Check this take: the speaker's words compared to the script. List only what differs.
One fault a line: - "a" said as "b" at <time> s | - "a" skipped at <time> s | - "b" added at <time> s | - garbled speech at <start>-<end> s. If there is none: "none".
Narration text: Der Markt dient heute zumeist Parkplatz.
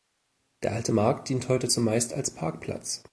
- "Alte" added at 0.7 s
- "als" added at 2.1 s